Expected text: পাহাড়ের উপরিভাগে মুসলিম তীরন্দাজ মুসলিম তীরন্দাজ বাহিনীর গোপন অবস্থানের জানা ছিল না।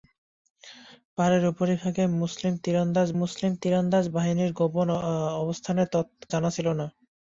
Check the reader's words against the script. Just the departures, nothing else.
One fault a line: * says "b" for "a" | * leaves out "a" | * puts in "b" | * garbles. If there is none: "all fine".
all fine